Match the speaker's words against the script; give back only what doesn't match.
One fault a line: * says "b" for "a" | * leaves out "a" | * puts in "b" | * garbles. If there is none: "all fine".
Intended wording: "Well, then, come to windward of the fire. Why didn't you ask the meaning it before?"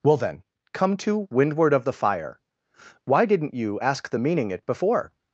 all fine